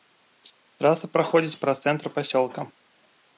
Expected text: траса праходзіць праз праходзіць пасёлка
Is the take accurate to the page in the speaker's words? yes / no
no